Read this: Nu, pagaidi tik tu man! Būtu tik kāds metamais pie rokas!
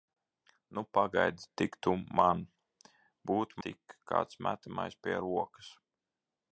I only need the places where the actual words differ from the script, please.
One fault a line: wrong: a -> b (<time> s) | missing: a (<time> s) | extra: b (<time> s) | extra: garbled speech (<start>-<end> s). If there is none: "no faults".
no faults